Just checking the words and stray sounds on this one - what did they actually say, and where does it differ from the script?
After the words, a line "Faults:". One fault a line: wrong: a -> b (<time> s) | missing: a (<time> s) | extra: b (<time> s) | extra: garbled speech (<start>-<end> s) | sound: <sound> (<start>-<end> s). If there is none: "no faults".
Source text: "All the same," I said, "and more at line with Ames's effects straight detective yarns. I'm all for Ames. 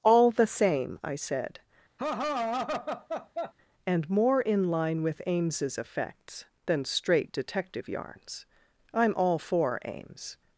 "All the same," I said, "and more in line with Ames's effects than straight detective yarns. I'm all for Ames.
Faults:
sound: laugh (2.0-3.5 s)
wrong: at -> in (4.4 s)
extra: than (6.6 s)